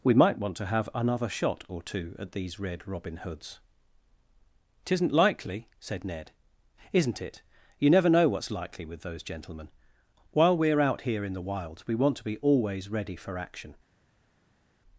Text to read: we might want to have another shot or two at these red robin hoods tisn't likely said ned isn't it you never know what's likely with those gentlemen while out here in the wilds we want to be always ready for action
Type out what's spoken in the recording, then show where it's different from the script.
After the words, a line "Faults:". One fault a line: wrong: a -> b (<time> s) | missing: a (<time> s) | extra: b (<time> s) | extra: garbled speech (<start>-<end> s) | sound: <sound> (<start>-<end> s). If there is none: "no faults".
we might want to have another shot or two at these red robin hoods tisn't likely said ned isn't it you never know what's likely with those gentlemen while we're out here in the wilds we want to be always ready for action
Faults:
extra: we're (10.6 s)